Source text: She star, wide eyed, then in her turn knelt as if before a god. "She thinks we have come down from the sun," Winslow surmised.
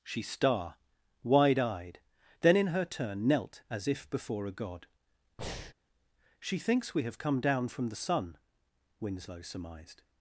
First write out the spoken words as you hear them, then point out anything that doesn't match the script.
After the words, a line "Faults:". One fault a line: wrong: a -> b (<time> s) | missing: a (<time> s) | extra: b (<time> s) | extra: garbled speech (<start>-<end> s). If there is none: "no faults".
She star, wide eyed, then in her turn knelt as if before a god. "She thinks we have come down from the sun," Winslow surmised.
Faults:
no faults